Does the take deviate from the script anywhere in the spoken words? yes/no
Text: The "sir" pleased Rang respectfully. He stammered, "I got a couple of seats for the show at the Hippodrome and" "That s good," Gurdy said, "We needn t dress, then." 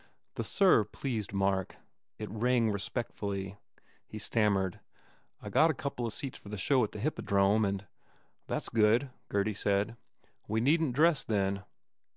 yes